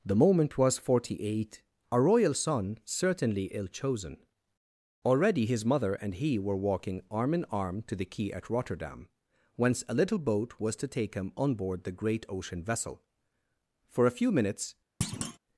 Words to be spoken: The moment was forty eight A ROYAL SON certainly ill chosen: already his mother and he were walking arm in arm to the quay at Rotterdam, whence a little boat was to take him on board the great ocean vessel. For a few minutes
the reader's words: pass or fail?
pass